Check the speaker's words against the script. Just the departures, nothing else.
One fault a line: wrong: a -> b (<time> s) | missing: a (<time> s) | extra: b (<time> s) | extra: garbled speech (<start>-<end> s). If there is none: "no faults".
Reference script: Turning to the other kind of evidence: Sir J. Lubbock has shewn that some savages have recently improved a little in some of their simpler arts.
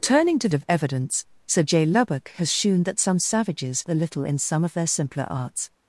missing: the other kind (0.5 s)
missing: have recently improved (3.9 s)